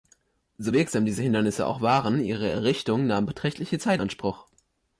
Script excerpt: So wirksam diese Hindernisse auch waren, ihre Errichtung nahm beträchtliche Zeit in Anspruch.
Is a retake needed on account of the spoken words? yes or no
yes